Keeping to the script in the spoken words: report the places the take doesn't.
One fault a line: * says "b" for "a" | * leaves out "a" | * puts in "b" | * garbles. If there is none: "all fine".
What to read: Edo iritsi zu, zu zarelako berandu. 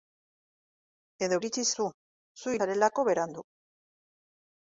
all fine